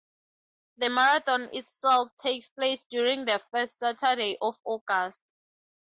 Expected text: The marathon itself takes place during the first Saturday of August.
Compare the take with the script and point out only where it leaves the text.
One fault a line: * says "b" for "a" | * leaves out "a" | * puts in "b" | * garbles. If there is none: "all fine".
all fine